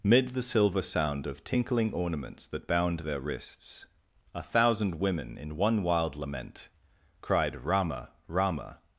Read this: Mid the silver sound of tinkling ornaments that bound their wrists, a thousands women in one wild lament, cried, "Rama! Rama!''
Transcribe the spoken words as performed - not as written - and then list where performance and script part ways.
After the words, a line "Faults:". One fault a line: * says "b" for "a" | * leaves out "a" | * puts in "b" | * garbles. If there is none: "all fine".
Mid the silver sound of tinkling ornaments that bound their wrists, a thousand women in one wild lament, cried, "Rama! Rama!''
Faults:
* says "thousand" for "thousands"